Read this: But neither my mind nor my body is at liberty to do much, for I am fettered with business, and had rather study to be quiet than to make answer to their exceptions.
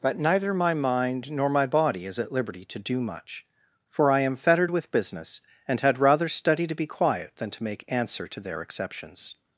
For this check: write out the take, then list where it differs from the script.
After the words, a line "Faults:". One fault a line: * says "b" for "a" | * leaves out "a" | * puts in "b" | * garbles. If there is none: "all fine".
But neither my mind nor my body is at liberty to do much, for I am fettered with business, and had rather study to be quiet than to make answer to their exceptions.
Faults:
all fine